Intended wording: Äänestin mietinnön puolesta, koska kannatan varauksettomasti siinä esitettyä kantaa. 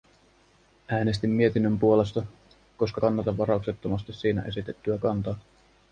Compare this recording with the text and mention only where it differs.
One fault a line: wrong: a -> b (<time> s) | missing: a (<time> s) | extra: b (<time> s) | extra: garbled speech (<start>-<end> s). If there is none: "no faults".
no faults